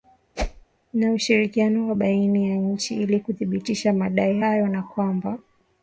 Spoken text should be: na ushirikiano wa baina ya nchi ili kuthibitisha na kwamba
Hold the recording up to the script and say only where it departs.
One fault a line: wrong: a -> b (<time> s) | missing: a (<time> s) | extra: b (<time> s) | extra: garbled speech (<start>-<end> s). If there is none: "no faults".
extra: madai hayo (3.9 s)